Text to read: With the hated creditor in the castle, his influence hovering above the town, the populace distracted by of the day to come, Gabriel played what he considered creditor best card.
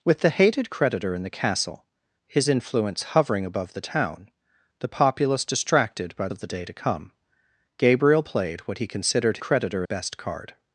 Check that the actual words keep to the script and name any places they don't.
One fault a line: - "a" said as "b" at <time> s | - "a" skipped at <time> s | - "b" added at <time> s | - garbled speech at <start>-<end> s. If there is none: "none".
none